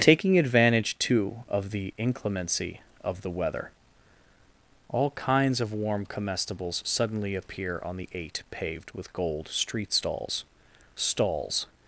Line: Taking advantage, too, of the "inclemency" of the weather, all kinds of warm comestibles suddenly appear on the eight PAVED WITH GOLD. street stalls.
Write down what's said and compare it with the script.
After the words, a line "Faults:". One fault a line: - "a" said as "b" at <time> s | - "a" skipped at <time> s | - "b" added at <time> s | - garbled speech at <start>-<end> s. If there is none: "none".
Taking advantage, too, of the "inclemency" of the weather, all kinds of warm comestibles suddenly appear on the eight PAVED WITH GOLD. street stalls stalls.
Faults:
- "stalls" added at 10.9 s